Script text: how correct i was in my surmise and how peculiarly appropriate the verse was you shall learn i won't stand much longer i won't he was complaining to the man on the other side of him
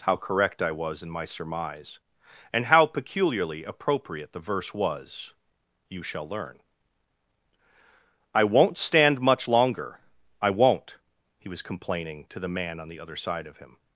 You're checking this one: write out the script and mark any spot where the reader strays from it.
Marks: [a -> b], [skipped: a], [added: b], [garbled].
how correct i was in my surmise and how peculiarly appropriate the verse was you shall learn i won't stand much longer i won't he was complaining to the man on the other side of him